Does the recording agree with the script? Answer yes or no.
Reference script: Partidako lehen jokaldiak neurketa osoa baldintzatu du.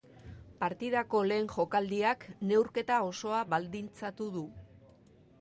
yes